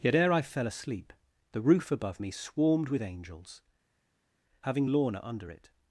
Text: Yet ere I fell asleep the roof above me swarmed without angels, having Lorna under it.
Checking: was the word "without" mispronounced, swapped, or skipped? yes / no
yes